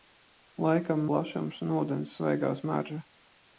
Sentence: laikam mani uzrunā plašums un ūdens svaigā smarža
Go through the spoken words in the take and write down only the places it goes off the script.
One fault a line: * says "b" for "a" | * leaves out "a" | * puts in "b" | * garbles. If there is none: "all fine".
* leaves out "mani uzrunā"